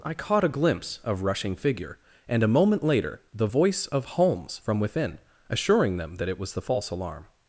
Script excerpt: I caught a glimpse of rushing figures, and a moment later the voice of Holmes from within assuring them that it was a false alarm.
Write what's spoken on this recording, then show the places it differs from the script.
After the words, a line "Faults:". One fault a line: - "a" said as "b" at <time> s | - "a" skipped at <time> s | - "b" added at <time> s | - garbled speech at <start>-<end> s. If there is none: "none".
I caught a glimpse of rushing figure, and a moment later the voice of Holmes from within assuring them that it was the false alarm.
Faults:
- "figures" said as "figure" at 1.5 s
- "a" said as "the" at 6.5 s